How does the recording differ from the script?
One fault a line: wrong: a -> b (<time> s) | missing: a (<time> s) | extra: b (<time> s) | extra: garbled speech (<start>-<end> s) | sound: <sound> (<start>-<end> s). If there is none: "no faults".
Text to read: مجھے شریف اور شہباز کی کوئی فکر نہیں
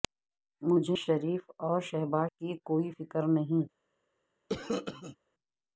sound: cough (4.5-5.2 s)